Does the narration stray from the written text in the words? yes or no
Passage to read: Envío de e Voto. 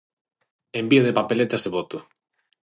yes